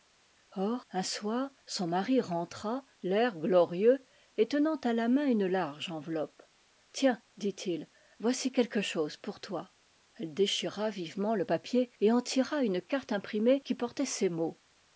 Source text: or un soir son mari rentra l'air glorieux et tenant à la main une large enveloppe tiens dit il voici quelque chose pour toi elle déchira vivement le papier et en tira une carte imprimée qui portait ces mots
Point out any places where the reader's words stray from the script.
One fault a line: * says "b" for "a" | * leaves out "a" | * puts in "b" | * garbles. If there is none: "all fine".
all fine